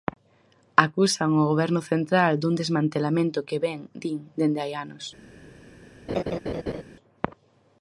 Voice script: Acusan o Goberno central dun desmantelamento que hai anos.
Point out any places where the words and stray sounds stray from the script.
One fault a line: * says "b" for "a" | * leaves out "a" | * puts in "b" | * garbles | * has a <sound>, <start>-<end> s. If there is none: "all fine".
* puts in "vén din dende"
* has a laugh, 6.1-6.8 s